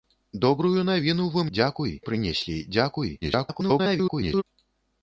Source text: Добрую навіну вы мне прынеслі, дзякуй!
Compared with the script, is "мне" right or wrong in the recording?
wrong